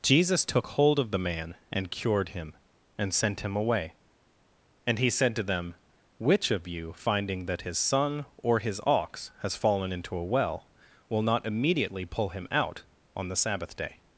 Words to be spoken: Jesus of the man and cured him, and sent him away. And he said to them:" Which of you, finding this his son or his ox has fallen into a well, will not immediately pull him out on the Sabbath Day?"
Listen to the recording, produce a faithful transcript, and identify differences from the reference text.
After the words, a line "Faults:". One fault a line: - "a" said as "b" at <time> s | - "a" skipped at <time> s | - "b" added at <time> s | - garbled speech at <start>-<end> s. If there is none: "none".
Jesus took hold of the man and cured him, and sent him away. And he said to them:" Which of you, finding that his son or his ox has fallen into a well, will not immediately pull him out on the Sabbath Day?"
Faults:
- "took hold" added at 0.5 s
- "this" said as "that" at 7.5 s